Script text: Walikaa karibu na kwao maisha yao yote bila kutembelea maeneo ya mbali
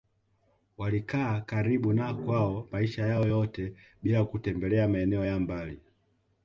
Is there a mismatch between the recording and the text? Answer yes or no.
no